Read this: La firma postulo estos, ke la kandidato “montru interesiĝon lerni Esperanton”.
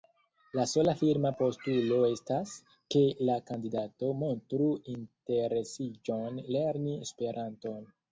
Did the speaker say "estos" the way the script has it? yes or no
no